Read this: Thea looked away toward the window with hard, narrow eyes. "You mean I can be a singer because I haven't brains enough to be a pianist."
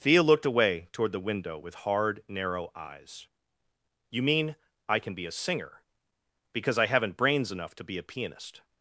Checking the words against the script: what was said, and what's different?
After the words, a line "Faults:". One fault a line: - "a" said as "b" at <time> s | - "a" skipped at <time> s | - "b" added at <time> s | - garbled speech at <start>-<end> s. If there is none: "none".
Thea looked away toward the window with hard, narrow eyes. "You mean I can be a singer because I haven't brains enough to be a pianist."
Faults:
none